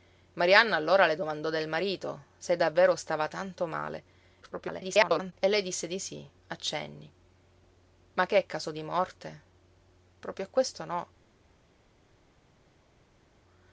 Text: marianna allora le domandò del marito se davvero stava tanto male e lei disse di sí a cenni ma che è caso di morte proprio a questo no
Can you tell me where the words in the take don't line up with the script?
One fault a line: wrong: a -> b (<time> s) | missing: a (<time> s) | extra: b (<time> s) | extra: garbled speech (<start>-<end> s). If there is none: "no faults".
extra: garbled speech (4.4-5.3 s)